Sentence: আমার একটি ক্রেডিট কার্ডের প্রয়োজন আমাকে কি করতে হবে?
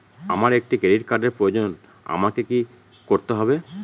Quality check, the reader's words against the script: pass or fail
pass